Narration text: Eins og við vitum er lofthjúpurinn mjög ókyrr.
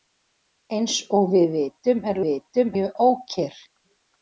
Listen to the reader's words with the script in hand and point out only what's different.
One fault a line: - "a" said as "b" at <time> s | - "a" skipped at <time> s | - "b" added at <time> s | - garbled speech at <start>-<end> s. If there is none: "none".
- "lofthjúpurinn" said as "vitum" at 2.3 s